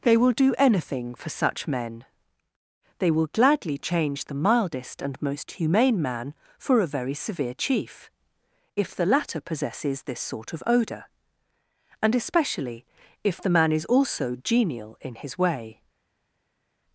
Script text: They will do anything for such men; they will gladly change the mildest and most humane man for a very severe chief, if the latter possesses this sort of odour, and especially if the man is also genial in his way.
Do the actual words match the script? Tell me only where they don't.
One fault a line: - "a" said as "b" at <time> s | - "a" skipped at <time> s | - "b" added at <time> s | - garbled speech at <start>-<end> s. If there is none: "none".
none